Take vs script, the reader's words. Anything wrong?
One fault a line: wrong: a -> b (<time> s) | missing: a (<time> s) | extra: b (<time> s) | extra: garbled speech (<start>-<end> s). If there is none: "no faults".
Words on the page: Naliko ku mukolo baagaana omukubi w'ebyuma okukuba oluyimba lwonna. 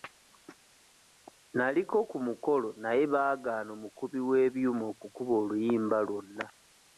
extra: naye (2.8 s)